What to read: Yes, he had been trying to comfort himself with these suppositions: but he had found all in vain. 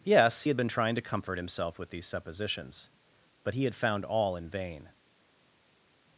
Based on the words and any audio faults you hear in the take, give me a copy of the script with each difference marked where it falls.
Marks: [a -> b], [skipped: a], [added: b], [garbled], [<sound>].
Yes, [skipped: he] had been trying to comfort himself with these suppositions: but he had found all in vain.